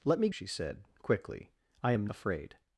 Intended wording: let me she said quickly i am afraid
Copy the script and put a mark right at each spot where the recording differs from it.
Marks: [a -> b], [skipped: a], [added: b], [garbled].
let me she said quickly i am afraid